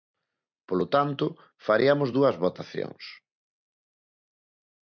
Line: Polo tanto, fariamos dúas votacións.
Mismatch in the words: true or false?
false